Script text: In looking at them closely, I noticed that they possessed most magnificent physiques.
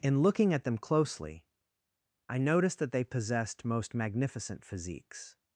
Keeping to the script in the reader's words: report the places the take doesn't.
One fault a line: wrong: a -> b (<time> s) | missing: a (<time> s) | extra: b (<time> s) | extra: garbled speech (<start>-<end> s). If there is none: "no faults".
no faults